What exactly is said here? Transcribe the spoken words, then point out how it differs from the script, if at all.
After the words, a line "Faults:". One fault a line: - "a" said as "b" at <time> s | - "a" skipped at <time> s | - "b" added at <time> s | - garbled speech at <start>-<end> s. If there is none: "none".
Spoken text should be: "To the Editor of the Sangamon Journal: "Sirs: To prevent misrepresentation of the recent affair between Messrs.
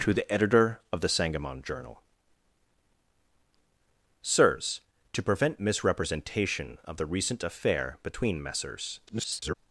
"To the Editor of the Sangamon Journal: "Sirs: To prevent misrepresentation of the recent affair between Messrs. [garbled]
Faults:
- garbled speech at 9.1-9.6 s